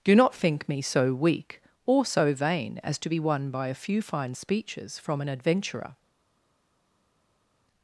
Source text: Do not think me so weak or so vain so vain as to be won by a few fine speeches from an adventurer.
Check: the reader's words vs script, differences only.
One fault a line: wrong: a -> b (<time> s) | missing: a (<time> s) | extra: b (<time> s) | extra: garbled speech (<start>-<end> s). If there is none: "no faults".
missing: so vain (2.8 s)